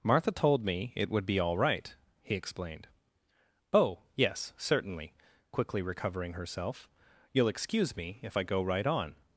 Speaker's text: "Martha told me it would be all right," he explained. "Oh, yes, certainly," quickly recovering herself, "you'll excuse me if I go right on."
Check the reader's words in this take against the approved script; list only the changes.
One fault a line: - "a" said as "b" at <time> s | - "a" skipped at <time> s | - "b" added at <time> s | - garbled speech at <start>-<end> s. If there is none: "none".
none